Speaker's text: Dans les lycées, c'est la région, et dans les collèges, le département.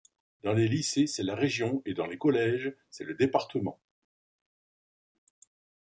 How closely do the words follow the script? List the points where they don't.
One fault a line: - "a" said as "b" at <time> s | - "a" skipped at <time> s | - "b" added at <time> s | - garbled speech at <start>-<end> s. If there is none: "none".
- "c'est" added at 2.9 s